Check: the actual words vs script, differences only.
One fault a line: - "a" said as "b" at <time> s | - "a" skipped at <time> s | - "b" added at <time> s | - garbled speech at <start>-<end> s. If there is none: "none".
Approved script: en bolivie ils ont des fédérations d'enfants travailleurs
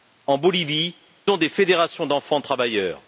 - "ils" skipped at 0.9 s